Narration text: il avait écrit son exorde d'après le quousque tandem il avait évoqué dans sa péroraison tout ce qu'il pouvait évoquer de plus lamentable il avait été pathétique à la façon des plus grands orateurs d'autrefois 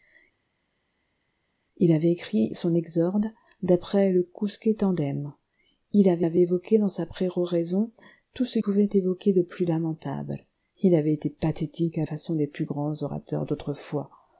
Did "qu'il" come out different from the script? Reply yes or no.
yes